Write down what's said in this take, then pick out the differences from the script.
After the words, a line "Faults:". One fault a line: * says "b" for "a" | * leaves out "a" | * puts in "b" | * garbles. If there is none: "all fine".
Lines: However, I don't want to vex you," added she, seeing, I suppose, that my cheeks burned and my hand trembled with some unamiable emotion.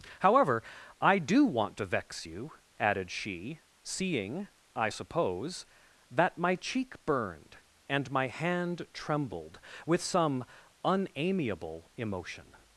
However, I do want to vex you," added she, seeing, I suppose, that my cheek burned and my hand trembled with some unamiable emotion.
Faults:
* says "do" for "don't"
* says "cheek" for "cheeks"